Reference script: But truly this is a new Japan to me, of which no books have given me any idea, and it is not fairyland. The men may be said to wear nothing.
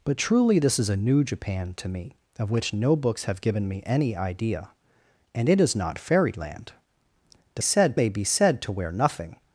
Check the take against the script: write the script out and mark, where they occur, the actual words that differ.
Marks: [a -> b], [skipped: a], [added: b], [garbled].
But truly this is a new Japan to me, of which no books have given me any idea, and it is not fairyland. The [men -> said] may be said to wear nothing.